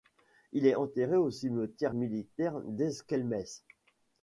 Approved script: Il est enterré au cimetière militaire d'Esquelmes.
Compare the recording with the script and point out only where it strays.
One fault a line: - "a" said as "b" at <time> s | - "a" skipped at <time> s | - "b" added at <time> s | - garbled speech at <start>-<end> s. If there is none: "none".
none